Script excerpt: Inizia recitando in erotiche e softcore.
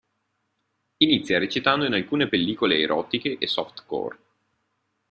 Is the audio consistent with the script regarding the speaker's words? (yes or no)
no